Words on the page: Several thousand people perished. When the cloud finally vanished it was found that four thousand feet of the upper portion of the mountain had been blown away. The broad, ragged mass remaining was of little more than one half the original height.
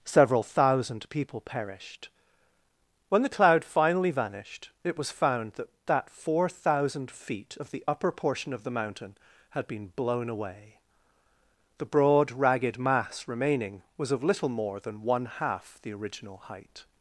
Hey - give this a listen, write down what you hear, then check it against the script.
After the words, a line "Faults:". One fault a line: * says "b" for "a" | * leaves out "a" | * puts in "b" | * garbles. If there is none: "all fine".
Several thousand people perished. When the cloud finally vanished it was found that that four thousand feet of the upper portion of the mountain had been blown away. The broad, ragged mass remaining was of little more than one half the original height.
Faults:
* puts in "that"